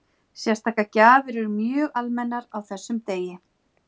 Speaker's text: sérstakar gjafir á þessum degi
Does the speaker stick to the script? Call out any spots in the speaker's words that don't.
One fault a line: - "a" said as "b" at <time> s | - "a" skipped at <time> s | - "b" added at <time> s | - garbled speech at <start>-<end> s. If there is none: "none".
- "eru mjög almennar" added at 1.4 s